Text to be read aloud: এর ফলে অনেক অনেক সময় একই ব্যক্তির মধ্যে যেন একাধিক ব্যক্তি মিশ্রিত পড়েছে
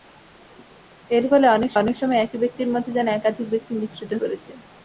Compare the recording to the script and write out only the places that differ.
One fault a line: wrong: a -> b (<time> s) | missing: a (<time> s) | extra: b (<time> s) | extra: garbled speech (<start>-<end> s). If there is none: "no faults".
no faults